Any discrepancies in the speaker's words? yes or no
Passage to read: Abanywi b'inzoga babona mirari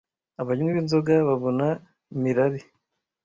no